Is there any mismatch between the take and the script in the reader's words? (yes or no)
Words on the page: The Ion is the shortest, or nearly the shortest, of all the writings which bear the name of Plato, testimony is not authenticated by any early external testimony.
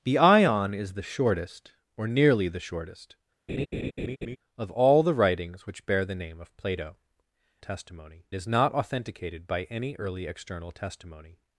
no